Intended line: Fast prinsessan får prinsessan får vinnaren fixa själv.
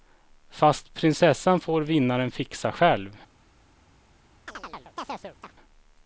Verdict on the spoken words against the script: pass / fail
fail